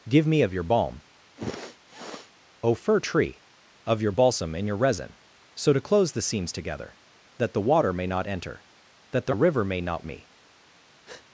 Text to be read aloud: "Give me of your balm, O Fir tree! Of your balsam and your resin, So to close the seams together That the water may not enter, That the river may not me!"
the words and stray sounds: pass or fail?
fail